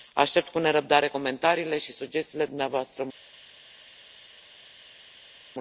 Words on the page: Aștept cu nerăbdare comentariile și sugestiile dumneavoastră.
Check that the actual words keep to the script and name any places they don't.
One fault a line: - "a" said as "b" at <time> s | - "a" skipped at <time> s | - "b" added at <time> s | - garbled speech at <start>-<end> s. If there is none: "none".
none